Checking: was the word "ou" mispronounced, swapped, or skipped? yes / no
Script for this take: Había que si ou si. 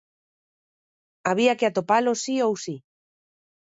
no